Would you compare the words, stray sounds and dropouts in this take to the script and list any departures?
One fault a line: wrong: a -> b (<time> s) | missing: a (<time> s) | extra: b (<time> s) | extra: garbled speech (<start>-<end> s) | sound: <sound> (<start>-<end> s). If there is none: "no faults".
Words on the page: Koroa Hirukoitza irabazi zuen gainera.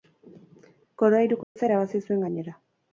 sound: dropout (1.4-1.6 s)